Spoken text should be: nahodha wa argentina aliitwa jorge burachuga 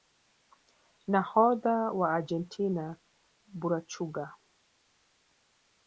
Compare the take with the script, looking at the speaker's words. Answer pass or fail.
fail